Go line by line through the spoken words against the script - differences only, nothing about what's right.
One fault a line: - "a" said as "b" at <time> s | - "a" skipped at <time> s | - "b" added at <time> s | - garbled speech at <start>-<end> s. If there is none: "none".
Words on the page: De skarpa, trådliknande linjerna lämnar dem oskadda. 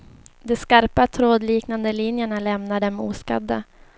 none